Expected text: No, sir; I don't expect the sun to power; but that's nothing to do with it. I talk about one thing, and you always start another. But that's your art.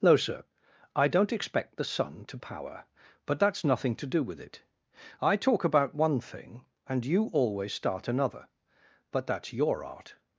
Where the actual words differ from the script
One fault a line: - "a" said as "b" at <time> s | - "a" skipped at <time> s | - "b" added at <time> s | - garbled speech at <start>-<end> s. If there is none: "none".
none